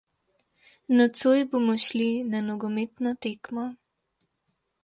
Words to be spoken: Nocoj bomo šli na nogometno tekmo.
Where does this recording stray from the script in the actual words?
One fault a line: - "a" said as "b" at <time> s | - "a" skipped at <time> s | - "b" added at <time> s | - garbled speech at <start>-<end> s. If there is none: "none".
none